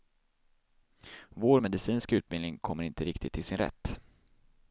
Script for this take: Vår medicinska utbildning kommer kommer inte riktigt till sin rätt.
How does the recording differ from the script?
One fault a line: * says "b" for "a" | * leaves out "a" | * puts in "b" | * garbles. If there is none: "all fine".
* leaves out "kommer"